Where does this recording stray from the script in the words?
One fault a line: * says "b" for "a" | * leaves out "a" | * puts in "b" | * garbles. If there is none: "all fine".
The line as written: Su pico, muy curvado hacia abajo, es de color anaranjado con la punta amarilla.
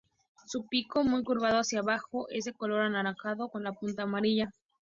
all fine